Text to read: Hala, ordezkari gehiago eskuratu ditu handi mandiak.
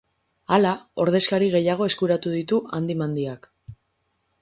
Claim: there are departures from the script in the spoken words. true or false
false